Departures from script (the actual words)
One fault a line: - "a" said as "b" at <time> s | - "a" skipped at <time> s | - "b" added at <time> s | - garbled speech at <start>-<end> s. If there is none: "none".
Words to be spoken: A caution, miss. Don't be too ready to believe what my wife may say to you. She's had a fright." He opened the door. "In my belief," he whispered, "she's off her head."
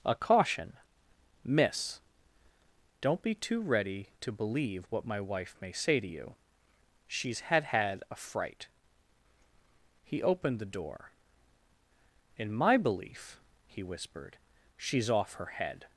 - "had" added at 7.7 s